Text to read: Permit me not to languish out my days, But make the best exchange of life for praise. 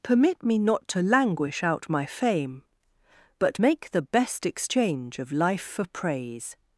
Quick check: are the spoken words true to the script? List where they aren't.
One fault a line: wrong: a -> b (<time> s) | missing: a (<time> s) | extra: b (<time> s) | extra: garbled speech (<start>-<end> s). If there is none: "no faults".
wrong: days -> fame (2.1 s)